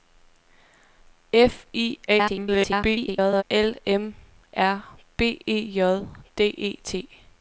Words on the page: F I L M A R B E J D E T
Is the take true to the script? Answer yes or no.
no